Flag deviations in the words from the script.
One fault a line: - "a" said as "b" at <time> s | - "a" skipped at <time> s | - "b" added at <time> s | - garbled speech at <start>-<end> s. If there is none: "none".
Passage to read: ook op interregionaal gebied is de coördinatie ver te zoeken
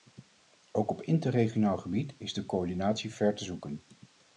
none